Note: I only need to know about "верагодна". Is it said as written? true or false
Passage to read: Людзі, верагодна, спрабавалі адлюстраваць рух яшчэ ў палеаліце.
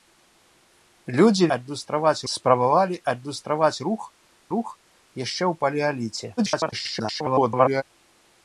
false